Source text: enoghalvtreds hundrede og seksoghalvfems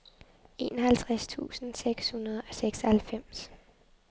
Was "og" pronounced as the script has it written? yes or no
yes